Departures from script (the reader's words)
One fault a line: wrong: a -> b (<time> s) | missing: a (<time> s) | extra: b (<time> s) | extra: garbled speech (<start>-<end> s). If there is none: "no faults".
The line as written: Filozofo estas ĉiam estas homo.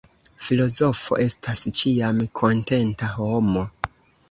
wrong: estas -> kontenta (2.4 s)